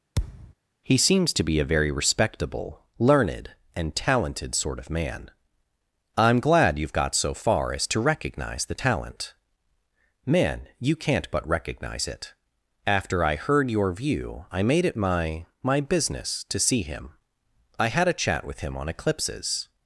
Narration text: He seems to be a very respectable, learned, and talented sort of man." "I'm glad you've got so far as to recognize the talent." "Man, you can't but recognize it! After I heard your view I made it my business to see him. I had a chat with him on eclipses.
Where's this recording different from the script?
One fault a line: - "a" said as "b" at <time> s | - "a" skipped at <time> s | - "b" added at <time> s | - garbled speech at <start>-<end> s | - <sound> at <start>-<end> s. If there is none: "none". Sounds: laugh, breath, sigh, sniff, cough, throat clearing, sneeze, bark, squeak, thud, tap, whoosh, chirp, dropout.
- thud at 0.2-0.5 s
- "my" added at 15.6 s